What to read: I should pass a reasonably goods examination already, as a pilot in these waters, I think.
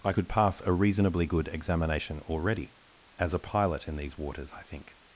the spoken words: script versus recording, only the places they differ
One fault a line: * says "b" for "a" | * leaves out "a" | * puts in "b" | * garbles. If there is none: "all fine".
* says "could" for "should"
* says "good" for "goods"